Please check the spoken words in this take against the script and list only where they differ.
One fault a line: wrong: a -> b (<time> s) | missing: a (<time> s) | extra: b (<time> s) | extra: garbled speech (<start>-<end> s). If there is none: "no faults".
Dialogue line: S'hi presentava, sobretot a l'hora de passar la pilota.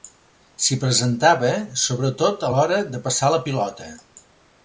no faults